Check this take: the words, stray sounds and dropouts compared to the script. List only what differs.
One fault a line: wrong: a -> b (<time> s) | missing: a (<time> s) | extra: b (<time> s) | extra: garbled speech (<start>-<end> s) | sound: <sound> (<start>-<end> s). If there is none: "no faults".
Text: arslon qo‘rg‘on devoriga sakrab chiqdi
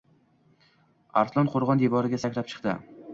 no faults